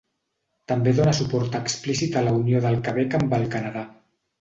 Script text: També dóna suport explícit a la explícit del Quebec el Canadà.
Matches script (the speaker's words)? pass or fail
fail